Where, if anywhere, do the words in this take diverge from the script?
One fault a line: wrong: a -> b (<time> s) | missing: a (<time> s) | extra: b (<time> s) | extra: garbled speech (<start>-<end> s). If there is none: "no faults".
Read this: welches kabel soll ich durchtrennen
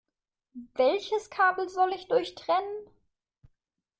no faults